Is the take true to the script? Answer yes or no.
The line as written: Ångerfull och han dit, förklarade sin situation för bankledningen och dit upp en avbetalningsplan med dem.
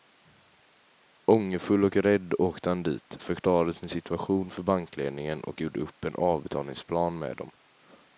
no